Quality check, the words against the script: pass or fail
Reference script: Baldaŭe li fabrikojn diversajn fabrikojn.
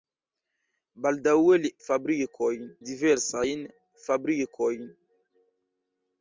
pass